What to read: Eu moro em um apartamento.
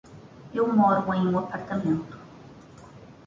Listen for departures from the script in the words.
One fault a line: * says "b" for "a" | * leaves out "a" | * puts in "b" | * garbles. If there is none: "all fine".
all fine